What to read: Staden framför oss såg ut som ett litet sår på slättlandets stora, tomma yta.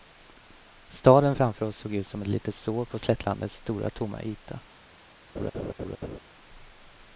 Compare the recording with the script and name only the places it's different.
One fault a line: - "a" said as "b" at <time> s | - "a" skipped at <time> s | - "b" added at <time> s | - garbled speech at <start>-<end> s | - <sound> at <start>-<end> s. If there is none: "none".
- laugh at 5.4-6.2 s